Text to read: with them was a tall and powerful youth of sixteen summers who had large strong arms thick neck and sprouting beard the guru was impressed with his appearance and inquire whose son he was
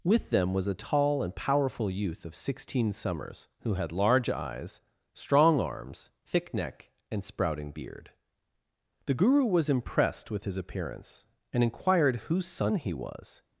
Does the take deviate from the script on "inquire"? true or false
true